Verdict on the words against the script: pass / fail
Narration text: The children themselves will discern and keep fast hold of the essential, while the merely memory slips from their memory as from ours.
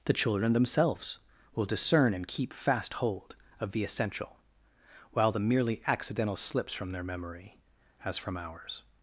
fail